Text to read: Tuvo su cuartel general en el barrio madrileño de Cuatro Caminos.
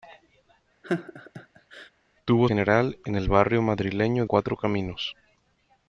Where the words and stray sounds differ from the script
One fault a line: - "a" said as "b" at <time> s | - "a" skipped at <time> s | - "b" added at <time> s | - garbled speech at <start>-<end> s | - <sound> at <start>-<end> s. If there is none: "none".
- laugh at 0.8-1.9 s
- "su cuartel" skipped at 2.5 s
- "de" skipped at 4.2 s